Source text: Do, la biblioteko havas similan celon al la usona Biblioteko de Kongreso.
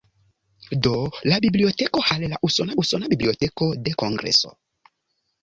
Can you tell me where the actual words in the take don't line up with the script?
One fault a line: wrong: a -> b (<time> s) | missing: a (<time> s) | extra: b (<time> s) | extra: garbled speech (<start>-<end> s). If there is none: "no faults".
missing: havas similan celon (2.0 s)
extra: usona (2.8 s)